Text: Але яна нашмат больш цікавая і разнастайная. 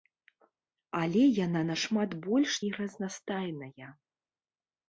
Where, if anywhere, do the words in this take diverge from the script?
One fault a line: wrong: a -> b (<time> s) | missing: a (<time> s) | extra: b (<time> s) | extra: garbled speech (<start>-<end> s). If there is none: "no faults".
missing: цікавая (2.5 s)